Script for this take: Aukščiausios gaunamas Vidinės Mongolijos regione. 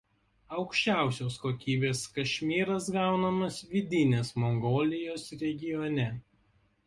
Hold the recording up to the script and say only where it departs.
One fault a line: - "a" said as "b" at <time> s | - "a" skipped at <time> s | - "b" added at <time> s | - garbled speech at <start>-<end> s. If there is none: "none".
- "kokybės kašmyras" added at 1.4 s